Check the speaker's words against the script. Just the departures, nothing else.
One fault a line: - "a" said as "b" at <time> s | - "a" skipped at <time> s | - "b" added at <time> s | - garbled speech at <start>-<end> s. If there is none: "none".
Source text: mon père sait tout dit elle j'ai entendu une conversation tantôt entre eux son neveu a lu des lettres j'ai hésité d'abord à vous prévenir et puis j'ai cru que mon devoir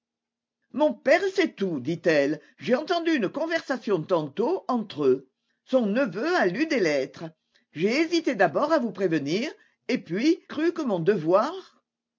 - "j'ai" skipped at 10.4 s